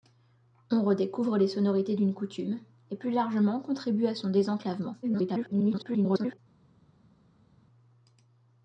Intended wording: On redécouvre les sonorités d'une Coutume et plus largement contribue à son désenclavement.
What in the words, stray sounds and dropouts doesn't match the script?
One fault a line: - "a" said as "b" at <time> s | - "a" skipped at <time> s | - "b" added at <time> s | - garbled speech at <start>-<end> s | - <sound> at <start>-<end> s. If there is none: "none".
- garbled speech at 5.0-6.4 s